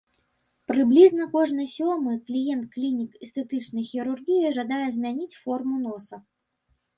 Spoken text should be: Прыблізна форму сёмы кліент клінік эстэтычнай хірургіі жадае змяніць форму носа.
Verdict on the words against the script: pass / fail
fail